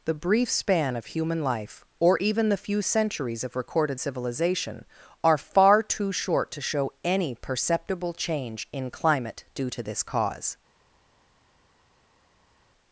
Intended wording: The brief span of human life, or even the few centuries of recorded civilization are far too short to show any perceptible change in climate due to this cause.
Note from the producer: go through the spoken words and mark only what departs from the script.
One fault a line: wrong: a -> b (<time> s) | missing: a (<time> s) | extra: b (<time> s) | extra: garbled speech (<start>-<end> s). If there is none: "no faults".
no faults